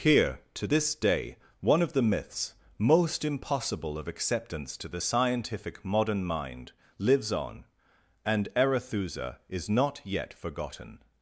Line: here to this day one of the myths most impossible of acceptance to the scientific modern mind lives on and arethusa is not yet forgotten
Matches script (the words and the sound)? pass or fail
pass